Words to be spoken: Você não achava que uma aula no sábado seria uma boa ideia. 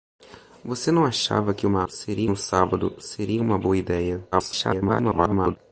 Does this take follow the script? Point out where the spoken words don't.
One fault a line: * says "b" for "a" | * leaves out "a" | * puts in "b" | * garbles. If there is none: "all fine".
* says "seria" for "aula"
* garbles